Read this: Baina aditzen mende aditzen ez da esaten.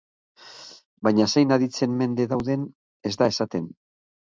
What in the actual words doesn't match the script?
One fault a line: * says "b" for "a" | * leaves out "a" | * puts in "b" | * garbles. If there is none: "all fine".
* puts in "zein"
* says "dauden" for "aditzen"